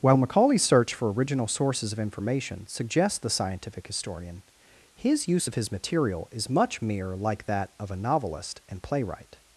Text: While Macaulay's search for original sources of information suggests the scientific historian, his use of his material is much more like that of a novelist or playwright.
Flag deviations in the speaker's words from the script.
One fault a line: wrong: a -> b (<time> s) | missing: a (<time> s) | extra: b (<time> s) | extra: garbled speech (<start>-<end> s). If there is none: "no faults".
wrong: more -> mere (6.8 s)
wrong: or -> and (8.7 s)